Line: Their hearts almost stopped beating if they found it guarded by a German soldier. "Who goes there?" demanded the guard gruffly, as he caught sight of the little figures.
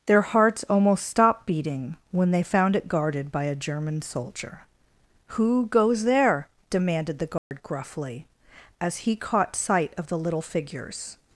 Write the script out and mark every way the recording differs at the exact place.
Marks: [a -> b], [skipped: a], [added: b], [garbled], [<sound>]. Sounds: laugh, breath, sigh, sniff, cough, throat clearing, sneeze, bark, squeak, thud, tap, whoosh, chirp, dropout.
Their hearts almost stopped beating [if -> when] they found it guarded by a German soldier. "Who goes there?" demanded the guard [dropout] gruffly, as he caught sight of the little figures.